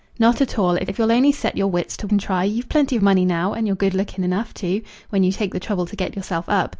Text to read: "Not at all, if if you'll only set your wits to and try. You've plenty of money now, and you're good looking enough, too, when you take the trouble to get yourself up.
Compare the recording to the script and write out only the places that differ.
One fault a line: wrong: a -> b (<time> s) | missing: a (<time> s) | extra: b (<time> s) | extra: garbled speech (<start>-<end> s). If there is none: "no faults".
no faults